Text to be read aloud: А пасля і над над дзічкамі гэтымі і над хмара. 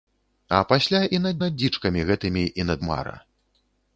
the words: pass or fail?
pass